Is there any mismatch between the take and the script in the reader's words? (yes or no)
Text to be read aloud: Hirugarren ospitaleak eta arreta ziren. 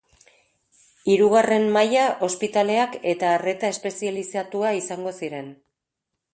yes